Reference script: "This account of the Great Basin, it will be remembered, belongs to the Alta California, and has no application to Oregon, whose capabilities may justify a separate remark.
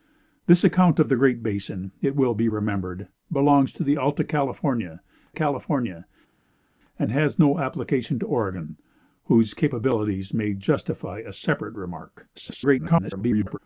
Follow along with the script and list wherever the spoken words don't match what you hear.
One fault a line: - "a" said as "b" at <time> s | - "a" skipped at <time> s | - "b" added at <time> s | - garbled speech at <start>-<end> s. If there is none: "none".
- "California" added at 5.3 s
- garbled speech at 12.3-13.6 s